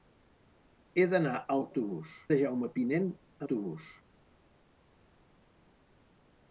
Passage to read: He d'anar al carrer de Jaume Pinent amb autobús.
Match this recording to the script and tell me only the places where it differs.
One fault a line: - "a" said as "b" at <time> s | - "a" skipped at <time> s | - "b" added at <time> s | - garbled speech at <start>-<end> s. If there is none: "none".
- "carrer" said as "autobús" at 1.7 s
- "amb" skipped at 3.1 s